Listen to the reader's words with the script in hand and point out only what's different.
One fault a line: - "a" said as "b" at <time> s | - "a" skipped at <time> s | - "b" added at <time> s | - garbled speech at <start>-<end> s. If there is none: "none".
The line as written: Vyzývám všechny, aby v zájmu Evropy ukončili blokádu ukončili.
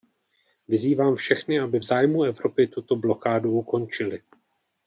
- "ukončili" said as "tuto" at 2.7 s